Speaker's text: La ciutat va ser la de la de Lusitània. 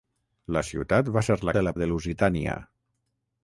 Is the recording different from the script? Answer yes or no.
no